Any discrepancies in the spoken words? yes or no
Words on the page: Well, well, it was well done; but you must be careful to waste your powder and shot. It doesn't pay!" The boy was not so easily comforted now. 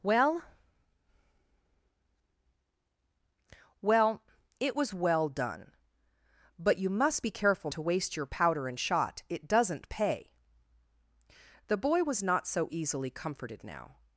no